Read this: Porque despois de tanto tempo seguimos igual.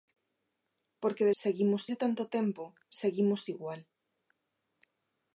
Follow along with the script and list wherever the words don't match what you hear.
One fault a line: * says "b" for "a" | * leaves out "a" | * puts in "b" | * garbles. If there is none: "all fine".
* says "seguimos" for "despois"